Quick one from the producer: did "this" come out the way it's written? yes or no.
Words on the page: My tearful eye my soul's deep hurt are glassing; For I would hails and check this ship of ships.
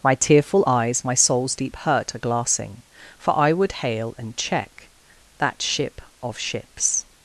no